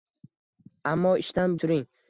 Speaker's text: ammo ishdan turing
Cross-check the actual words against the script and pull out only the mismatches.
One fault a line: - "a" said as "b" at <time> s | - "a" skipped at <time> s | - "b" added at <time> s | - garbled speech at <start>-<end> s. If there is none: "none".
none